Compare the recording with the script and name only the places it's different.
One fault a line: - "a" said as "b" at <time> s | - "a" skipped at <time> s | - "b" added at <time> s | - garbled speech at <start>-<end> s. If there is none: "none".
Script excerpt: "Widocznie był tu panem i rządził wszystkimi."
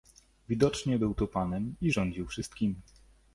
none